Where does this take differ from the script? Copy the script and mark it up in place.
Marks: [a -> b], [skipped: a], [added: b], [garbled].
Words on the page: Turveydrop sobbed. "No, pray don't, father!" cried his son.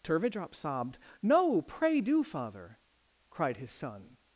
Turveydrop sobbed. "No, pray [don't, -> do] father!" cried his son.